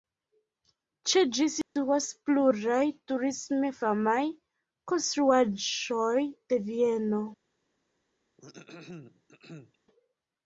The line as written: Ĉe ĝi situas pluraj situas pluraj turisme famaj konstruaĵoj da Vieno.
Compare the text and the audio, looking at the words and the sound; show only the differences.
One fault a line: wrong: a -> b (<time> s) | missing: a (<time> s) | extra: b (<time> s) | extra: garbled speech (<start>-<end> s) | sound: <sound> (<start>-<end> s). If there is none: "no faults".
sound: dropout (1.6-1.8 s)
missing: situas pluraj (2.8 s)
wrong: da -> de (6.3 s)
sound: throat clearing (8.4-9.8 s)